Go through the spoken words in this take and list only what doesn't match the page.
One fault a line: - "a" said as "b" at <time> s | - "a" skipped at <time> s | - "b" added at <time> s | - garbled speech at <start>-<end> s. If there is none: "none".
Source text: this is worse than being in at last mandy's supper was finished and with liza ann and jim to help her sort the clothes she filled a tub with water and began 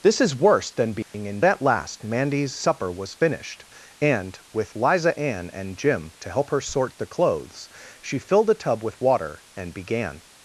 none